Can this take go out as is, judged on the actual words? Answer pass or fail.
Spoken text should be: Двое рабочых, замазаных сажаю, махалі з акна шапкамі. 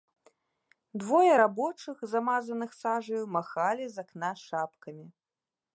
pass